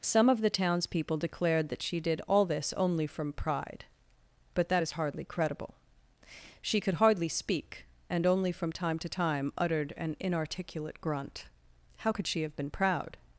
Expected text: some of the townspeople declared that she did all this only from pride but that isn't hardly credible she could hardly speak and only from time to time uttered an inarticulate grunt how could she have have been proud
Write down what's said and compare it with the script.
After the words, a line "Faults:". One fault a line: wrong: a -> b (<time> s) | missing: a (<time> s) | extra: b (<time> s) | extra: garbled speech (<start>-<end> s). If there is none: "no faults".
some of the townspeople declared that she did all this only from pride but that is hardly credible she could hardly speak and only from time to time uttered an inarticulate grunt how could she have been proud
Faults:
wrong: isn't -> is (4.8 s)
missing: have (12.6 s)